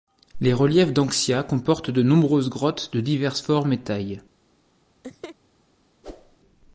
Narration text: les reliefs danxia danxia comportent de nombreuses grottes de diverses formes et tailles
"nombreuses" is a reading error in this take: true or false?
false